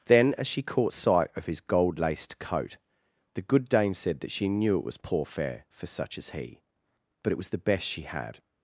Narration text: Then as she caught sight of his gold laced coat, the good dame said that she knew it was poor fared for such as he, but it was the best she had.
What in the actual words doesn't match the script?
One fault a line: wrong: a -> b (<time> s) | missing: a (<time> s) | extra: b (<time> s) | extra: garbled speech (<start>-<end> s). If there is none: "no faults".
wrong: fared -> fare (5.2 s)